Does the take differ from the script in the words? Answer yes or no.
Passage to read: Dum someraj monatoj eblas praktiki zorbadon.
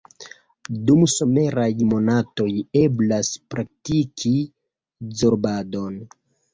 no